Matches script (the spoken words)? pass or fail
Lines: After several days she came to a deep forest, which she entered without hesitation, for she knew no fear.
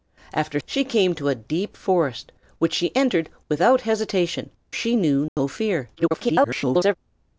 fail